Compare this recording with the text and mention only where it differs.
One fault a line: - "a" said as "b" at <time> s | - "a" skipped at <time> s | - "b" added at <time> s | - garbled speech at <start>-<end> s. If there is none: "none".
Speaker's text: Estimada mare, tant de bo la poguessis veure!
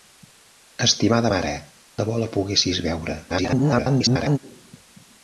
- "tant" skipped at 1.5 s
- garbled speech at 3.3-4.4 s